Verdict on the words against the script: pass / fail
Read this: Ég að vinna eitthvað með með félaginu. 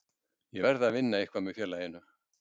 fail